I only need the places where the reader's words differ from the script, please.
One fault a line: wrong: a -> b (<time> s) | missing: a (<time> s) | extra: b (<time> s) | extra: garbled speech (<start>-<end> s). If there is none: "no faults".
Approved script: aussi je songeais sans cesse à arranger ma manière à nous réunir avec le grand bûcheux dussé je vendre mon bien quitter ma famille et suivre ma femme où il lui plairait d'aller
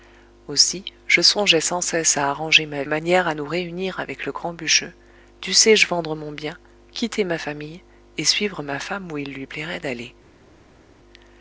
no faults